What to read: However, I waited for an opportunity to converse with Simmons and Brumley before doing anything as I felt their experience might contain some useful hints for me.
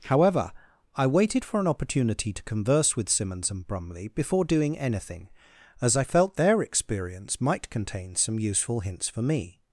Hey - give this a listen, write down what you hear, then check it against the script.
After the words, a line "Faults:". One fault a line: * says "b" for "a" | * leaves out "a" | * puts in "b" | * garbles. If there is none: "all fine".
However, I waited for an opportunity to converse with Simmons and Brumley before doing anything as I felt their experience might contain some useful hints for me.
Faults:
all fine